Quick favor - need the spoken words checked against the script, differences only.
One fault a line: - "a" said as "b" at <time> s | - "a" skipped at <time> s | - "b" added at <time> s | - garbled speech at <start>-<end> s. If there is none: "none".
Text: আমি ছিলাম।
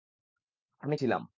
none